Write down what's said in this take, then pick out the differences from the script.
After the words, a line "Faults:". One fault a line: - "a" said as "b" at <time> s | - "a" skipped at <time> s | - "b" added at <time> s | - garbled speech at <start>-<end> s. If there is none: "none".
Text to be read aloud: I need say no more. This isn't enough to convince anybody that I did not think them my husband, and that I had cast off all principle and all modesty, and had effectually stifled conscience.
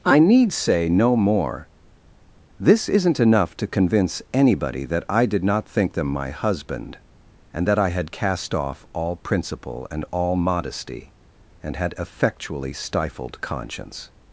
I need say no more. This isn't enough to convince anybody that I did not think them my husband, and that I had cast off all principle and all modesty, and had effectually stifled conscience.
Faults:
none